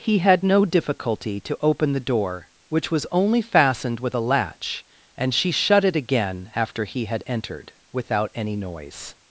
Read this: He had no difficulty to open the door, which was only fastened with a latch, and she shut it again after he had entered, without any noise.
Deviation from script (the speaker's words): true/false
false